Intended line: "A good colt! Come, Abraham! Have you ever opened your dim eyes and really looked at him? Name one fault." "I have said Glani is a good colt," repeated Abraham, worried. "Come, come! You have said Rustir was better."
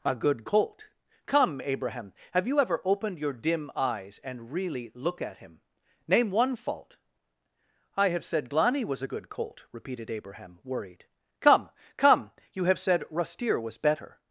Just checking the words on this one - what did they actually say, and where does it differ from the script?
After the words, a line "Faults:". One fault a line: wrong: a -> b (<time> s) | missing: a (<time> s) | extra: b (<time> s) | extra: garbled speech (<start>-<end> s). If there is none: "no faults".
"A good colt! Come, Abraham! Have you ever opened your dim eyes and really look at him? Name one fault." "I have said Glani was a good colt," repeated Abraham, worried. "Come, come! You have said Rustir was better."
Faults:
wrong: looked -> look (4.9 s)
wrong: is -> was (8.8 s)